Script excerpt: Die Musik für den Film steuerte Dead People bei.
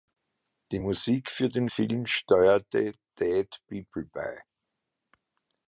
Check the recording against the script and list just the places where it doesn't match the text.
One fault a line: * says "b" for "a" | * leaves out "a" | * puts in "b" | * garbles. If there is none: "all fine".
all fine